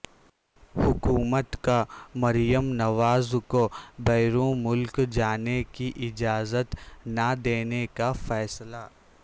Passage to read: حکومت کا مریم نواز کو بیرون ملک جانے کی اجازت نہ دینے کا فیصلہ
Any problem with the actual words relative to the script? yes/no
no